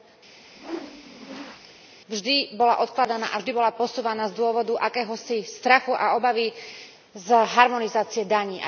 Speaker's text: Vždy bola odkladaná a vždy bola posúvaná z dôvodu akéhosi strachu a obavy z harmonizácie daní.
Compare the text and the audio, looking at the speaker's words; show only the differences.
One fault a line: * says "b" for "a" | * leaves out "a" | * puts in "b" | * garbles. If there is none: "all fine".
all fine